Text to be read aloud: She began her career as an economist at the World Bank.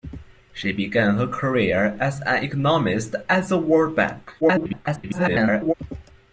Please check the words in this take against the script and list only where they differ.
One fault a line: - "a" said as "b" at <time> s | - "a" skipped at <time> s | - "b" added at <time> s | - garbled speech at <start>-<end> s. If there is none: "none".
- garbled speech at 4.4-5.7 s